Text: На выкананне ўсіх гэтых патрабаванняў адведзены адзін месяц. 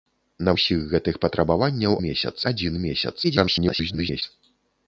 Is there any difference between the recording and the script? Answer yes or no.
yes